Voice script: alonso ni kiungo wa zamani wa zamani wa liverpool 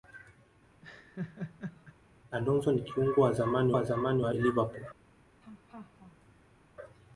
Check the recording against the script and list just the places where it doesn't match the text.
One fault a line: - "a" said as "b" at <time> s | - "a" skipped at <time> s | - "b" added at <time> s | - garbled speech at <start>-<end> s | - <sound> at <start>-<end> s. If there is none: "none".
- laugh at 0.8-2.0 s
- laugh at 5.4-6.6 s